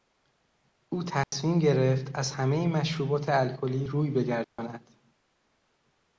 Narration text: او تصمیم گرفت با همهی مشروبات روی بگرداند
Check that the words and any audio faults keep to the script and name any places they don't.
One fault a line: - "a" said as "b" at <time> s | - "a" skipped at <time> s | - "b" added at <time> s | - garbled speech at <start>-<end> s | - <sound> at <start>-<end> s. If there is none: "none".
- dropout at 1.2-1.3 s
- "با" said as "از" at 2.2 s
- "الکلی" added at 3.3 s
- dropout at 4.4-4.6 s